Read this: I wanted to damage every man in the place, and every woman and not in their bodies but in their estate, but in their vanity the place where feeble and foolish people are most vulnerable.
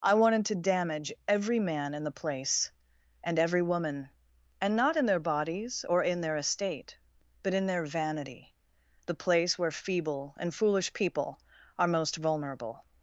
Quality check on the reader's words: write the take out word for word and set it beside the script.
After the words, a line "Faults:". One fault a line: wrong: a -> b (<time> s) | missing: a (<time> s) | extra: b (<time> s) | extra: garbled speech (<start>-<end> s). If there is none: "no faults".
I wanted to damage every man in the place, and every woman and not in their bodies or in their estate, but in their vanity the place where feeble and foolish people are most vulnerable.
Faults:
wrong: but -> or (5.9 s)